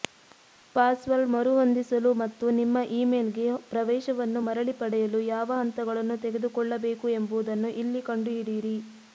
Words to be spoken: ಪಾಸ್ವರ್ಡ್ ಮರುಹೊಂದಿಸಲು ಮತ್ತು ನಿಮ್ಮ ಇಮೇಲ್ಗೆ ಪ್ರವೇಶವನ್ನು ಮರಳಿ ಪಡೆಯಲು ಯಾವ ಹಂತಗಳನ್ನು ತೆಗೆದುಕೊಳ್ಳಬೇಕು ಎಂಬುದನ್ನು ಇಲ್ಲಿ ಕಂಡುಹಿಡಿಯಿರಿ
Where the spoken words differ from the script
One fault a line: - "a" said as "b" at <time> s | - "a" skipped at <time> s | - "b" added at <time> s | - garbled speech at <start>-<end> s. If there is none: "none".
none